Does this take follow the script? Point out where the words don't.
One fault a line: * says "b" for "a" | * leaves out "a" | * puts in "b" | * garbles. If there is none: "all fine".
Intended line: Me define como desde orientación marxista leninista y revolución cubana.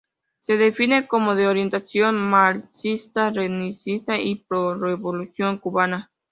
* says "Se" for "Me"
* says "de" for "desde"
* puts in "pro"